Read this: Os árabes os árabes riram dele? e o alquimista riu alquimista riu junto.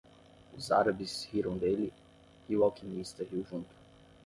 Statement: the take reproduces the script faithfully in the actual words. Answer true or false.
false